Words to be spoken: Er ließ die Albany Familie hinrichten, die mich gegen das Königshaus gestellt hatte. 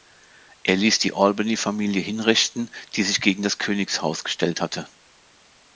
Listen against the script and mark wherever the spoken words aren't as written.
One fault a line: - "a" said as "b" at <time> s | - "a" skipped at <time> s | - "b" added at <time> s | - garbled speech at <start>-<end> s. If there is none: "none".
- "mich" said as "sich" at 3.0 s